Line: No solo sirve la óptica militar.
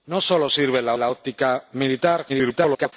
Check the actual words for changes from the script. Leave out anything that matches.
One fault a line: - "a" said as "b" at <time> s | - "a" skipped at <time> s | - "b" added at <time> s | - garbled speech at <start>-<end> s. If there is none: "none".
- "la" added at 1.0 s
- garbled speech at 2.3-2.9 s